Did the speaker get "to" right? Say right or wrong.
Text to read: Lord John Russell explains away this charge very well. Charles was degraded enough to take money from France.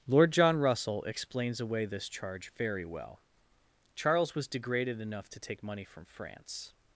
right